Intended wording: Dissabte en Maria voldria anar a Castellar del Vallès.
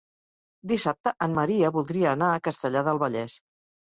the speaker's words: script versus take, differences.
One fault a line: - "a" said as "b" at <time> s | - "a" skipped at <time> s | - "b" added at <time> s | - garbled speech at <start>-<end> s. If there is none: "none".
none